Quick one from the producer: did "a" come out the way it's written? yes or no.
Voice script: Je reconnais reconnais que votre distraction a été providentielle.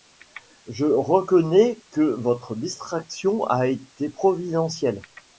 yes